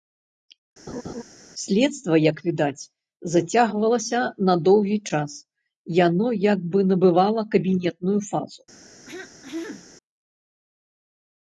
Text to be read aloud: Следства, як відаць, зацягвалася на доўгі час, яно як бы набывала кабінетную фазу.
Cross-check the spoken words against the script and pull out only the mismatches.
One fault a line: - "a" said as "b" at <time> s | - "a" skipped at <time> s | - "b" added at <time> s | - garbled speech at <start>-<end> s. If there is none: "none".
none